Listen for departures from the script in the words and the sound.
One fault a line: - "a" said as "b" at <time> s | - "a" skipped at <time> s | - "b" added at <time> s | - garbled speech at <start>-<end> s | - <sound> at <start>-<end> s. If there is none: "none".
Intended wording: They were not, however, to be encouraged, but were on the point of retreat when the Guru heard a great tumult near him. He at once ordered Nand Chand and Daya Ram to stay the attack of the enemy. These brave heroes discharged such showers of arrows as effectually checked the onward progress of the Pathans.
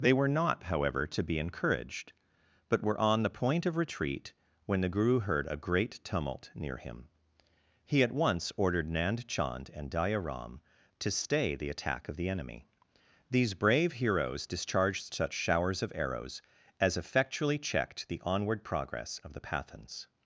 none